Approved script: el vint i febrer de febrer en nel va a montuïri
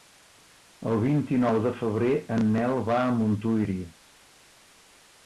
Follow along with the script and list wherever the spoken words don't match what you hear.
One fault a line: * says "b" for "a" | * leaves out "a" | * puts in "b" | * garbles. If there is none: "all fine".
* says "nou" for "febrer"